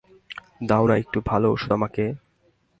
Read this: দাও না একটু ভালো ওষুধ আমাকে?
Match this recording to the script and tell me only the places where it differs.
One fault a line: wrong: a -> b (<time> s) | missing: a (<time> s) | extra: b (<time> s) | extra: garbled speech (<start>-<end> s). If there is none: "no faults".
no faults